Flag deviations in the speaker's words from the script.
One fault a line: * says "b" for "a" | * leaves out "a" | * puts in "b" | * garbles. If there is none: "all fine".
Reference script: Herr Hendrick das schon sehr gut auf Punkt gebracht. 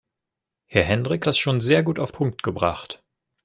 all fine